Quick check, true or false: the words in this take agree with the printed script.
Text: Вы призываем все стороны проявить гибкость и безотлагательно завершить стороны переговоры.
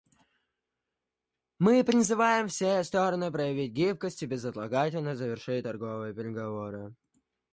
false